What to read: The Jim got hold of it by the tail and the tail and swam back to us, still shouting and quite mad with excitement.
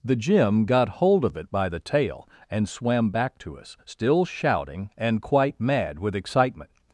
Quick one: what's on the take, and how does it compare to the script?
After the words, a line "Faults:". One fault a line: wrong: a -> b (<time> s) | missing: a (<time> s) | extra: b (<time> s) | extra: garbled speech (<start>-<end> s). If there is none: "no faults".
The Jim got hold of it by the tail and swam back to us, still shouting and quite mad with excitement.
Faults:
missing: the tail and (2.7 s)